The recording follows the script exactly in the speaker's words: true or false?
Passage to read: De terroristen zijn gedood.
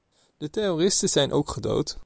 false